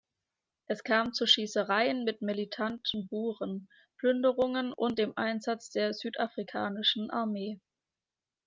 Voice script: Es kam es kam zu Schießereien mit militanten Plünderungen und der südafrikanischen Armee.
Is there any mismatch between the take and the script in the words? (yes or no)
yes